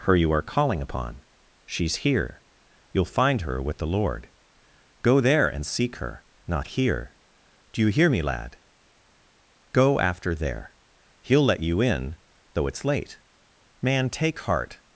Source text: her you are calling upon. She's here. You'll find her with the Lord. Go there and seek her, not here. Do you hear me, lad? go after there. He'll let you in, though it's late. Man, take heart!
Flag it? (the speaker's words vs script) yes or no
no